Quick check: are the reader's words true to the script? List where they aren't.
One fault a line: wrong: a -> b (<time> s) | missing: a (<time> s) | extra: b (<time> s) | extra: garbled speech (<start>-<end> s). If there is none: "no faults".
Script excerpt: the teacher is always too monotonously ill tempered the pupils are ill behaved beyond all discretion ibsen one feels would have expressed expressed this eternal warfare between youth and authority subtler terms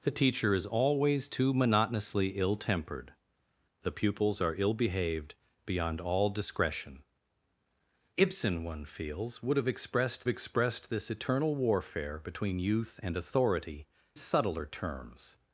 no faults